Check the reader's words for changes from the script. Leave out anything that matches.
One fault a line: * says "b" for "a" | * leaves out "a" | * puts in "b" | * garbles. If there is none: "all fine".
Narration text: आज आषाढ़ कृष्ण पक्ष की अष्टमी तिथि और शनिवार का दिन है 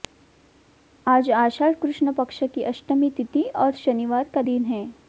all fine